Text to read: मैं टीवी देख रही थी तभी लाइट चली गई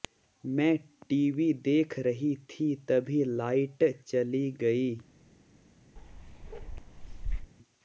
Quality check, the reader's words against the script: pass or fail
pass